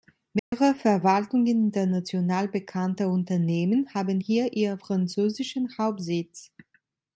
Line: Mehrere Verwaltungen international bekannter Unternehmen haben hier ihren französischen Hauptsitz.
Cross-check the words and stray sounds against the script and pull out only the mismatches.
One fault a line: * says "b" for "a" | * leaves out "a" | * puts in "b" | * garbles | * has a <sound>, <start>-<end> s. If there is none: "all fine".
* has a dropout, 0.4-0.5 s